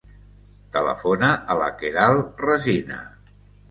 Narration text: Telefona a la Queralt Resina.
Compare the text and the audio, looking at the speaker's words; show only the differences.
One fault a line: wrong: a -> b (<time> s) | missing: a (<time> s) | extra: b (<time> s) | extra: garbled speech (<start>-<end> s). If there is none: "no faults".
no faults